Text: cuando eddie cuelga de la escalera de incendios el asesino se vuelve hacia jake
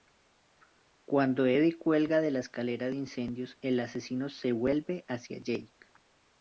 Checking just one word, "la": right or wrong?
right